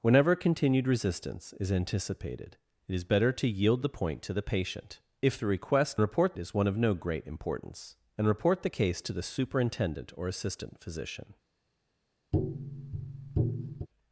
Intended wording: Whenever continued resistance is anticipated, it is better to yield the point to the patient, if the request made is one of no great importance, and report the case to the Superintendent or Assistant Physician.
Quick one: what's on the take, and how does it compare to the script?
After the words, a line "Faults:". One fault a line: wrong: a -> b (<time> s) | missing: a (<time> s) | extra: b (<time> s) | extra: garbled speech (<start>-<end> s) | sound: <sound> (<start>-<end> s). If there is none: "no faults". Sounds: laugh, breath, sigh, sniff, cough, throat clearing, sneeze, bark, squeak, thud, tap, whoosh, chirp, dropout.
Whenever continued resistance is anticipated, it is better to yield the point to the patient, if the request report is one of no great importance, and report the case to the Superintendent or Assistant Physician.
Faults:
wrong: made -> report (6.0 s)
sound: tap (12.3-13.9 s)